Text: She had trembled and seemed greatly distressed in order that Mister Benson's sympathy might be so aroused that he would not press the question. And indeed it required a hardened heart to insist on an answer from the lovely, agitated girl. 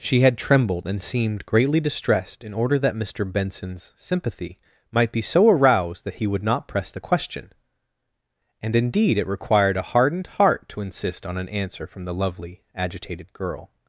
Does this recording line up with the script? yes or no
yes